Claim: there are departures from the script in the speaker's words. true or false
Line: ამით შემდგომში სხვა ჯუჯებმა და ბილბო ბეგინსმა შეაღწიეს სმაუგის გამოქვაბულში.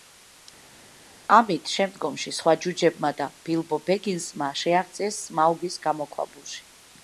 false